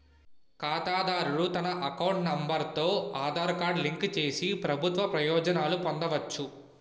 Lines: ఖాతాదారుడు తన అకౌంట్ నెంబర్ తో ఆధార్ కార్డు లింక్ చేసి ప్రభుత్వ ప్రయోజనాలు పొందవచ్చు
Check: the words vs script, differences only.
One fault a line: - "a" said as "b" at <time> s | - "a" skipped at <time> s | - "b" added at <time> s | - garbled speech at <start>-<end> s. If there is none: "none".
none